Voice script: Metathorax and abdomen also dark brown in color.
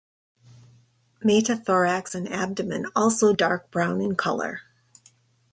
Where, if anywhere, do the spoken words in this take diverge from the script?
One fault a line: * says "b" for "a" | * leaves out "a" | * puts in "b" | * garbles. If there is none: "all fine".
all fine